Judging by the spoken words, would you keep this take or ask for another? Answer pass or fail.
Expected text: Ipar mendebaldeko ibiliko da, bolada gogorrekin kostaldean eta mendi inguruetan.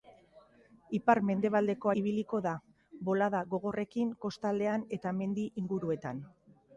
pass